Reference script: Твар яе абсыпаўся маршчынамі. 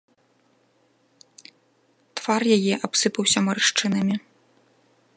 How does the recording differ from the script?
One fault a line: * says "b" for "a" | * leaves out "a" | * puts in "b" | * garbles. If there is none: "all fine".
all fine